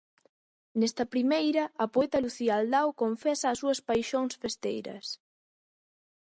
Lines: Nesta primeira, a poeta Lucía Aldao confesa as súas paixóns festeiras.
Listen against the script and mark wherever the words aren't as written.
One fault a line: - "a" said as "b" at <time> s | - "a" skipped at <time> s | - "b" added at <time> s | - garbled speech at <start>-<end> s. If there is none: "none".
none